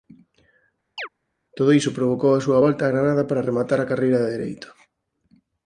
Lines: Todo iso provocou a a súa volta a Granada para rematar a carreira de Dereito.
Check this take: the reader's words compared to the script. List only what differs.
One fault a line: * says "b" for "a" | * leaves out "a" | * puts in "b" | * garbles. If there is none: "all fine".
* leaves out "a"